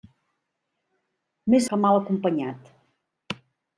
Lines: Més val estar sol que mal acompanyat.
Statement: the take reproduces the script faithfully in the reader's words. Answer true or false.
false